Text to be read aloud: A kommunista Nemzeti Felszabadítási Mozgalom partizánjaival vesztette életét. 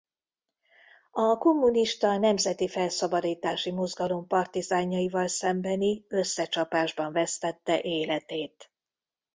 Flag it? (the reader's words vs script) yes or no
yes